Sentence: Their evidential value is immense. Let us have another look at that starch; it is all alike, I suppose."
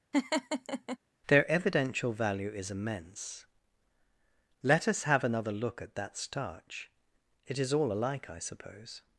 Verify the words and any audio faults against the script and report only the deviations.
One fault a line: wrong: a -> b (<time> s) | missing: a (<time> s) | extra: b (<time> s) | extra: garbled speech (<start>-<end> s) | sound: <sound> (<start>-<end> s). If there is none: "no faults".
sound: laugh (0.1-1.0 s)